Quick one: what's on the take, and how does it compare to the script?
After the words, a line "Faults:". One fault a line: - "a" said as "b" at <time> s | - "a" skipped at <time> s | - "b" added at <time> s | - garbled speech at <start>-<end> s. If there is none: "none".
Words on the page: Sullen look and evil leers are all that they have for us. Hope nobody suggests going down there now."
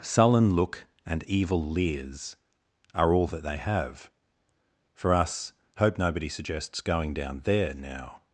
Sullen look and evil leers are all that they have for us. Hope nobody suggests going down there now."
Faults:
none